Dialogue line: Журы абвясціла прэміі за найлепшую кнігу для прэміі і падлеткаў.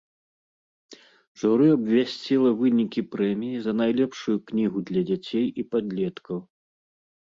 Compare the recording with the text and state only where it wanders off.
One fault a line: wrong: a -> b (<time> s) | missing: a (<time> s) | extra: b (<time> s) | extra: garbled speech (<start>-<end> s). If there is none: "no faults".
extra: вынікі (2.6 s)
wrong: прэміі -> дзяцей (5.1 s)